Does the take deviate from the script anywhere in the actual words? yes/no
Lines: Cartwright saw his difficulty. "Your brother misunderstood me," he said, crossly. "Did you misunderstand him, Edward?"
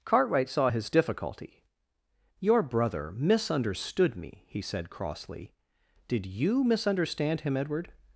no